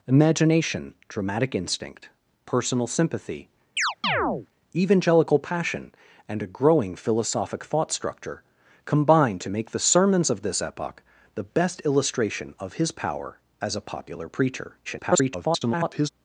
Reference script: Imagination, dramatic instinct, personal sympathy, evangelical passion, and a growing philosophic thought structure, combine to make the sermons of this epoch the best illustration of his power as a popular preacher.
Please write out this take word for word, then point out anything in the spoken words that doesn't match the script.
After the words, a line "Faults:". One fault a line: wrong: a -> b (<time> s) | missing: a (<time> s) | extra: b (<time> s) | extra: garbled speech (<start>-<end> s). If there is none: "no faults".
Imagination, dramatic instinct, personal sympathy, evangelical passion, and a growing philosophic thought structure, combine to make the sermons of this epoch the best illustration of his power as a popular preacher. [garbled]
Faults:
extra: garbled speech (14.8-16.1 s)